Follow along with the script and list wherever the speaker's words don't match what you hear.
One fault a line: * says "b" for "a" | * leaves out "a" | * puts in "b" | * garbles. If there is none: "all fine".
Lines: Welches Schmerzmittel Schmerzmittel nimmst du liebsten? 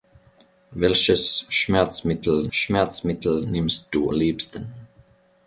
all fine